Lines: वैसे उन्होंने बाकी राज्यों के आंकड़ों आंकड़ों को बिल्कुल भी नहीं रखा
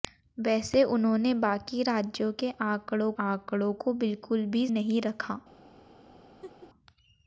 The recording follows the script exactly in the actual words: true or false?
true